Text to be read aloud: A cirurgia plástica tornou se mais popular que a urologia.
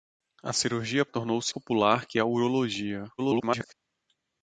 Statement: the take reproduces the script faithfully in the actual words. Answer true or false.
false